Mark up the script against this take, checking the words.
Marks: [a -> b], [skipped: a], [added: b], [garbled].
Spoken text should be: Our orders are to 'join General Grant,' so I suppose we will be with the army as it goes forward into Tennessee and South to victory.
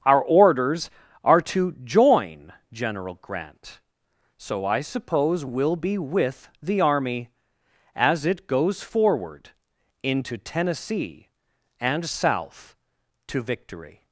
Our orders are to 'join General Grant,' so I suppose [skipped: we] will be with the army as it goes forward into Tennessee and South to victory.